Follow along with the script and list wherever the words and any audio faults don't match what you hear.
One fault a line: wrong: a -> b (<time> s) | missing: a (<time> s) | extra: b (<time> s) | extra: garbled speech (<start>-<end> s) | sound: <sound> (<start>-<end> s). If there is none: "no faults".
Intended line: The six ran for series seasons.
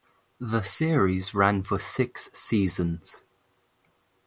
wrong: six -> series (0.6 s)
wrong: series -> six (1.8 s)